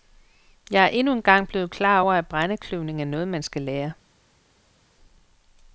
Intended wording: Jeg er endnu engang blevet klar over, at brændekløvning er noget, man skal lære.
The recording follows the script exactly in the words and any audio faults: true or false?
true